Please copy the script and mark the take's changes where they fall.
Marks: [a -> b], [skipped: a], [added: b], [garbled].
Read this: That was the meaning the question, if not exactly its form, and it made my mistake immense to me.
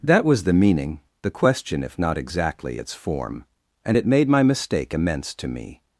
That was the meaning the question, if not exactly its form, and it made my mistake immense to me.